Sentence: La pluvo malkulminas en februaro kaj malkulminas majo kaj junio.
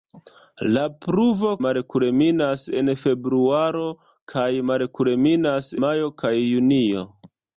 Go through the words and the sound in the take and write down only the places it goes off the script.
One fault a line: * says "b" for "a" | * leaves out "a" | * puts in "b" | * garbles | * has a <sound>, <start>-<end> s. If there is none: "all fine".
all fine